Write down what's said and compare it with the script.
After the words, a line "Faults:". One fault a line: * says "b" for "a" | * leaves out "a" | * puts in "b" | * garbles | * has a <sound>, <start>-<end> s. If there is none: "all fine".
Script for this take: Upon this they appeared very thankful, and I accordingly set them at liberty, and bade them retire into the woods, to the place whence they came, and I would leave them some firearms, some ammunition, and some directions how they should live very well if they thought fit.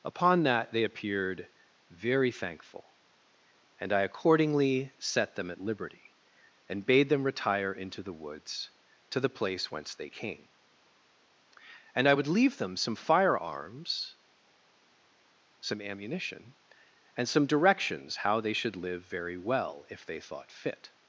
Upon that they appeared very thankful, and I accordingly set them at liberty, and bade them retire into the woods, to the place whence they came, and I would leave them some firearms, some ammunition, and some directions how they should live very well if they thought fit.
Faults:
* says "that" for "this"